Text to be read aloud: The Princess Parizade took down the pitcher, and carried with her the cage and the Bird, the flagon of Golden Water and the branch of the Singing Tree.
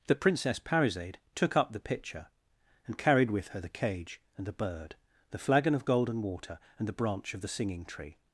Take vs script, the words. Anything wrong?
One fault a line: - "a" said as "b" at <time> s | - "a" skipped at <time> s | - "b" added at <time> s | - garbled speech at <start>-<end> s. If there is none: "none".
- "down" said as "up" at 1.6 s